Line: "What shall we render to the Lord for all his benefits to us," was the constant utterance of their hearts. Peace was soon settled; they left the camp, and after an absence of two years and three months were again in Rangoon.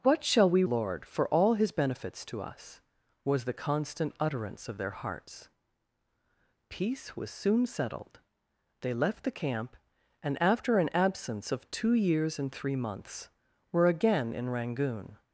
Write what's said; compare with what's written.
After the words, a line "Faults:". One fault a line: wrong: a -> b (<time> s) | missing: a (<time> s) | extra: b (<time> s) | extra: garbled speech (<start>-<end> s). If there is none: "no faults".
"What shall we Lord for all his benefits to us," was the constant utterance of their hearts. Peace was soon settled; they left the camp, and after an absence of two years and three months were again in Rangoon.
Faults:
missing: render to the (0.6 s)